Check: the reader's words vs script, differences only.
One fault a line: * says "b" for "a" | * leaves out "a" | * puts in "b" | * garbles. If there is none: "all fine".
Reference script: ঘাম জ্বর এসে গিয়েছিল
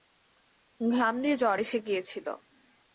* puts in "দিয়ে"